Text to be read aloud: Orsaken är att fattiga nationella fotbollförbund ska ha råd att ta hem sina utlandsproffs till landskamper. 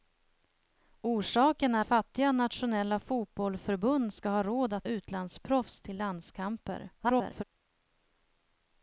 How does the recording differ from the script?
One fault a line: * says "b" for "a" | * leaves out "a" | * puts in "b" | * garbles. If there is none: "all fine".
* leaves out "att"
* leaves out "ta hem sina"
* garbles